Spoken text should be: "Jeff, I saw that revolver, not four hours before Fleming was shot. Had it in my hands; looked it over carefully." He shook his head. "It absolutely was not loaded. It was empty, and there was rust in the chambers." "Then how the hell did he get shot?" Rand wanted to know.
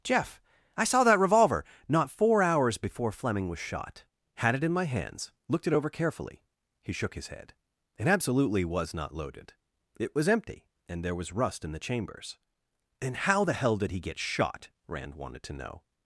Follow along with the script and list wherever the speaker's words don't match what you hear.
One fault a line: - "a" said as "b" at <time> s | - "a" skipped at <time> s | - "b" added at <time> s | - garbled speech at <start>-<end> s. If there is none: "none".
- "Then" said as "And" at 13.0 s